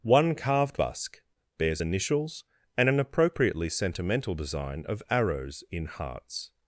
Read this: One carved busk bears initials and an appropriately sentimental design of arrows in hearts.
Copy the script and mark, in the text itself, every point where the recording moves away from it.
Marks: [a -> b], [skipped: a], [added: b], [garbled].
One carved busk bears initials and an appropriately sentimental design of arrows in hearts.